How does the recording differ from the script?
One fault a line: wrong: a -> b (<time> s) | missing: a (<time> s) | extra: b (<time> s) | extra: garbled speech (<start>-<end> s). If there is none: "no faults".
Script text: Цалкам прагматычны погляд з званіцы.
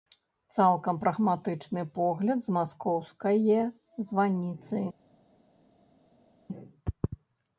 extra: маскоўскае (2.6 s)